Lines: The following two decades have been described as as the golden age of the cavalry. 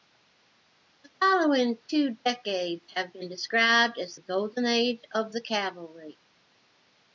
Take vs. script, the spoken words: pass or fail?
fail